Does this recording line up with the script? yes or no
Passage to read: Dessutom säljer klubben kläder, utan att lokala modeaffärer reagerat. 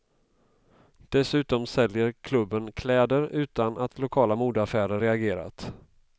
yes